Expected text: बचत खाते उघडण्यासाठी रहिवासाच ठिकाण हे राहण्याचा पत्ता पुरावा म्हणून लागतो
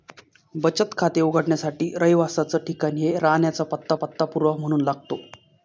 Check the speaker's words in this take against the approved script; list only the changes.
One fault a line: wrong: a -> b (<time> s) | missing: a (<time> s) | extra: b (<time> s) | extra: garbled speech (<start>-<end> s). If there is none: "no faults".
extra: पत्ता (4.0 s)